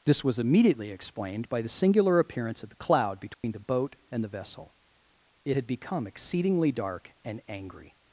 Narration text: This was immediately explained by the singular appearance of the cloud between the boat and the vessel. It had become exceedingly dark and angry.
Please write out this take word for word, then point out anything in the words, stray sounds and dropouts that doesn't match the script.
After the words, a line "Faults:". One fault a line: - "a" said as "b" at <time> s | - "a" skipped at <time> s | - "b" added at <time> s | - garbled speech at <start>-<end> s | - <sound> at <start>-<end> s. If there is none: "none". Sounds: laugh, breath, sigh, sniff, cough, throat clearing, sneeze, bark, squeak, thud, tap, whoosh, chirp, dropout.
This was immediately explained by the singular appearance of the cloud between the boat and the vessel. It had become exceedingly dark and angry.
Faults:
- dropout at 3.3-3.4 s